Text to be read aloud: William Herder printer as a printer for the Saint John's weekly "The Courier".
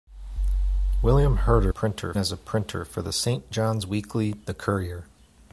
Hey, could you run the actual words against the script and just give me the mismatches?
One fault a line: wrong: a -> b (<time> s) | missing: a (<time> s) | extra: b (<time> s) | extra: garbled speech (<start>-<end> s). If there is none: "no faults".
no faults